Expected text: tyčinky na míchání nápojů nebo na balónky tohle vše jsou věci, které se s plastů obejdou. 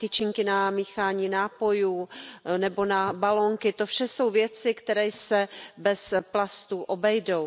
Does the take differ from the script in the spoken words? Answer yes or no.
yes